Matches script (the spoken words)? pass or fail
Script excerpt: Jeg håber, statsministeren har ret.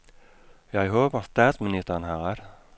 pass